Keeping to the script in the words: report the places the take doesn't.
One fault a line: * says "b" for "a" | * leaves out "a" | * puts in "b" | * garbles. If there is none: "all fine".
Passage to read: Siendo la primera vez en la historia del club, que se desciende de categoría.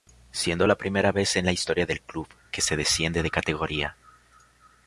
all fine